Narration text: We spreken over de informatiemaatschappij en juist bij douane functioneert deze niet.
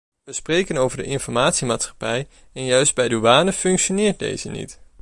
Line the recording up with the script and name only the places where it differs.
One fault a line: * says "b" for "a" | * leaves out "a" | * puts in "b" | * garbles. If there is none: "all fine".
all fine